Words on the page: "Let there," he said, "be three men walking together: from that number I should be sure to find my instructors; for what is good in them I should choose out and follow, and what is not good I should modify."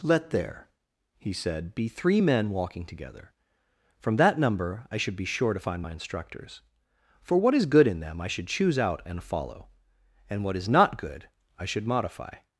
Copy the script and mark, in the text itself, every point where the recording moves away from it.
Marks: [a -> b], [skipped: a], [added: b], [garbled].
"Let there," he said, "be three men walking together: from that number I should be sure to find my instructors; for what is good in them I should choose out and follow, and what is not good I should modify."